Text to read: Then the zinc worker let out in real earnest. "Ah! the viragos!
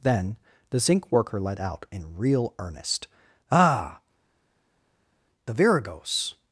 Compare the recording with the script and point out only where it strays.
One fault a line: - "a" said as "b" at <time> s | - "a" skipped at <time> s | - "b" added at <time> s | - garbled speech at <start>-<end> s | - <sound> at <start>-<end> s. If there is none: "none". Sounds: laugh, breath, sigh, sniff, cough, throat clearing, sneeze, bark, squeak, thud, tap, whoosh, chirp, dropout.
none